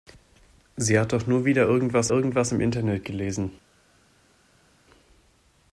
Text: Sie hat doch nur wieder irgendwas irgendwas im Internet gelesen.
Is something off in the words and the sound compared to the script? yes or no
no